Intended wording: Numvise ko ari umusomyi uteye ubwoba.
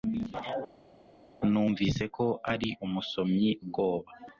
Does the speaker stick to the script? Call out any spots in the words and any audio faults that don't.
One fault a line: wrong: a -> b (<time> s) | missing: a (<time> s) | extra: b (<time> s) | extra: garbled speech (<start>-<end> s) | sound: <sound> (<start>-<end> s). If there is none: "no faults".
missing: uteye (3.5 s)